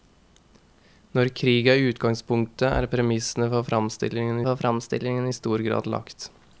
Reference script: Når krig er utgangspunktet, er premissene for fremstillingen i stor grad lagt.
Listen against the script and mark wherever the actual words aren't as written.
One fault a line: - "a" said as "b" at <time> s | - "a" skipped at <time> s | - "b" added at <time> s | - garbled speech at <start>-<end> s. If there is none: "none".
- "for fremstillingen" added at 4.5 s